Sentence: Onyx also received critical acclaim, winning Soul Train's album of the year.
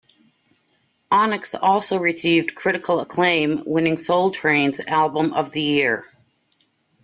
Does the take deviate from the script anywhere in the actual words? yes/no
no